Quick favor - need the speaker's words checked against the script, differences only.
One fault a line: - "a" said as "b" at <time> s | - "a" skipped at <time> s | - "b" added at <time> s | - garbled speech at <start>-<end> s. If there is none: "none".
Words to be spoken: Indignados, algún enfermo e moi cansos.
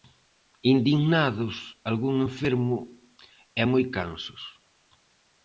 none